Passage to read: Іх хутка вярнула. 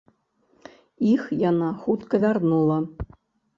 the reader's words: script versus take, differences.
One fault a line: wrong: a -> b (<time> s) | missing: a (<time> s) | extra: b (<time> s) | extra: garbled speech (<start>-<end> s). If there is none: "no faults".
extra: яна (1.5 s)